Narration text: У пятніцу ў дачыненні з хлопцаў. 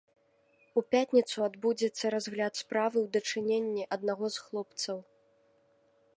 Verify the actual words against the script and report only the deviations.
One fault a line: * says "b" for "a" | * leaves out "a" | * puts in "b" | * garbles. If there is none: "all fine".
* puts in "адбудзецца разгляд справы"
* puts in "аднаго"